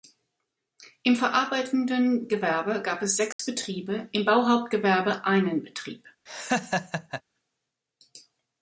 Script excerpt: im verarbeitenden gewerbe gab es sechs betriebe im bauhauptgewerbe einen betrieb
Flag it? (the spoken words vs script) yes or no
no